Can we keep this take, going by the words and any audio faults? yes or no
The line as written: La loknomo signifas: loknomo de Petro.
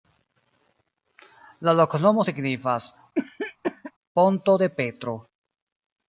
no